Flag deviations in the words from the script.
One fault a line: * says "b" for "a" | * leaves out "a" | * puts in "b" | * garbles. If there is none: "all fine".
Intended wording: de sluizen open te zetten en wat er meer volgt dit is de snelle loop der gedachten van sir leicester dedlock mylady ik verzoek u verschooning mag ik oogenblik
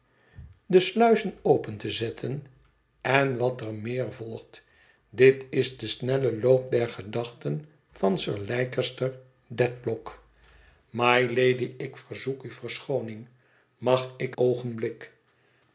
all fine